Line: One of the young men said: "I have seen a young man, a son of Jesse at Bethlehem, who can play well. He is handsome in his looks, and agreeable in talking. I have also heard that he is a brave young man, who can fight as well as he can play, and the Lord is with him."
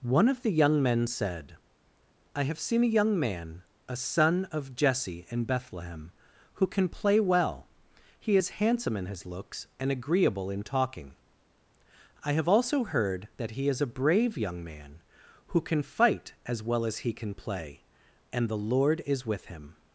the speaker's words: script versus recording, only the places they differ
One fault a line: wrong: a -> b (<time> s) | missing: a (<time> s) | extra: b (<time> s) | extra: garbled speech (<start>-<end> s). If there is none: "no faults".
wrong: at -> in (5.3 s)